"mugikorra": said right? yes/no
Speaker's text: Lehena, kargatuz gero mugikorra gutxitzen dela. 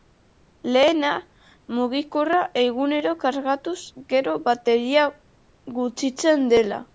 no